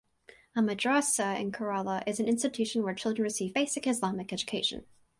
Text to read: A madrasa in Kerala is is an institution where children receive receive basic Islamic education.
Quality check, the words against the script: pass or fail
fail